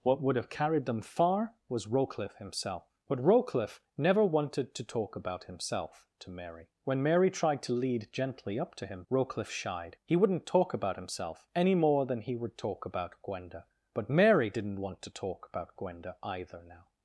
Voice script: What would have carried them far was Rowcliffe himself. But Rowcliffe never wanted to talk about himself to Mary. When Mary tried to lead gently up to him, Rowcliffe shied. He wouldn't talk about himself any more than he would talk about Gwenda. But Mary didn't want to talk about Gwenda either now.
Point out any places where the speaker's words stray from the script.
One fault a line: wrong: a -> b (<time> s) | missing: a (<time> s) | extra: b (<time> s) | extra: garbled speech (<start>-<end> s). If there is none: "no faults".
no faults